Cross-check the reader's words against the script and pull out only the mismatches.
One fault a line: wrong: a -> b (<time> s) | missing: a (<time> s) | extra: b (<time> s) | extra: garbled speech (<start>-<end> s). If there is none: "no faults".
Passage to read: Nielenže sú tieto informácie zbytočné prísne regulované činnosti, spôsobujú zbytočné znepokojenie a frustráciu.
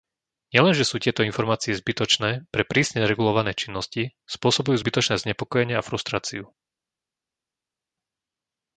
extra: pre (2.5 s)